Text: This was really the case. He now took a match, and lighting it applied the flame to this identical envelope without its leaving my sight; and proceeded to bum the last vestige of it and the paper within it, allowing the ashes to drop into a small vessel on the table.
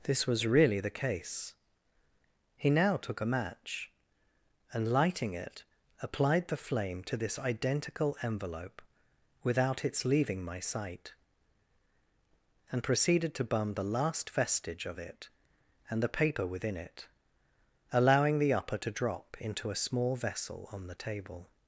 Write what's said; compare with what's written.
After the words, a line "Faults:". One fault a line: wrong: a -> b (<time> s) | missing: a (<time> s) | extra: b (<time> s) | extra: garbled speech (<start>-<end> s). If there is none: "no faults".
This was really the case. He now took a match, and lighting it applied the flame to this identical envelope without its leaving my sight; and proceeded to bum the last vestige of it and the paper within it, allowing the upper to drop into a small vessel on the table.
Faults:
wrong: ashes -> upper (18.5 s)